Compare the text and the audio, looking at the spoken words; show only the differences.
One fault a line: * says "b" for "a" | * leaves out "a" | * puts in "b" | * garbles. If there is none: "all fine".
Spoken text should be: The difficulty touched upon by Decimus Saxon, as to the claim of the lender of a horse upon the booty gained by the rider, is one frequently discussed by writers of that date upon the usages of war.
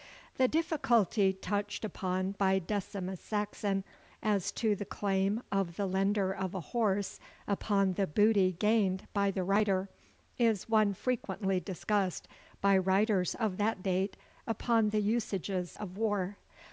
all fine